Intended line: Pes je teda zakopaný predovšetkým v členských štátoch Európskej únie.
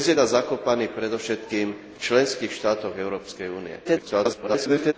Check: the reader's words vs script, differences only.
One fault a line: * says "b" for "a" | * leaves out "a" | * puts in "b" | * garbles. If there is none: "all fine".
* leaves out "je"
* garbles